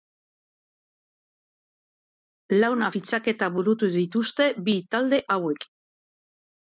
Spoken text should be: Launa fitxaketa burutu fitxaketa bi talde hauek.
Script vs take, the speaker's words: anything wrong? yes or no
yes